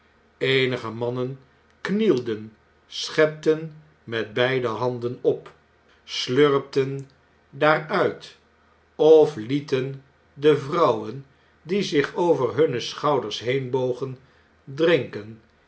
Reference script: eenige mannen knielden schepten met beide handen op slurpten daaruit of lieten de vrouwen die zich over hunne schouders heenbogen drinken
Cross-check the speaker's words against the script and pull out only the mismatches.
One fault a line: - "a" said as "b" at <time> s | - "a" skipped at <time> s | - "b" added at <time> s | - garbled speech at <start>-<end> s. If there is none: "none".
none